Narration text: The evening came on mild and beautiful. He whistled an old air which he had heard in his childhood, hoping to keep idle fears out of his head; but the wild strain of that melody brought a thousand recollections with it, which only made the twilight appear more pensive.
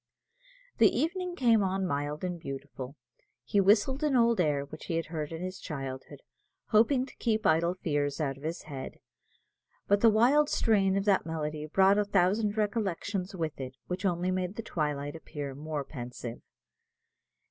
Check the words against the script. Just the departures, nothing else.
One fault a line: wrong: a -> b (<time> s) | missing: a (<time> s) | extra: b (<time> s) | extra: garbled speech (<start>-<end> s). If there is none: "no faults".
no faults